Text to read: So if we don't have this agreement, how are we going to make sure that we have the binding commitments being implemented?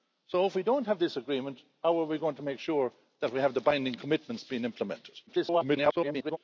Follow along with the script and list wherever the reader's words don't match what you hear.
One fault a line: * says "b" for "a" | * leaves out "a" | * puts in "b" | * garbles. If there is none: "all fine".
* garbles